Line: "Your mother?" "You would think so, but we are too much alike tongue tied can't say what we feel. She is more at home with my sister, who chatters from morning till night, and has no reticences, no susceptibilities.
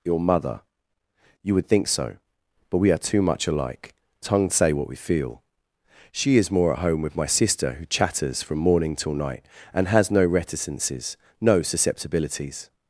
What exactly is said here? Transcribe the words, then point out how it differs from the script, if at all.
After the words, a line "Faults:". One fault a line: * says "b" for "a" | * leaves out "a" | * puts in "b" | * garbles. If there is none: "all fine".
"Your mother?" "You would think so, but we are too much alike tongue say what we feel. She is more at home with my sister, who chatters from morning till night, and has no reticences, no susceptibilities.
Faults:
* leaves out "tied can't"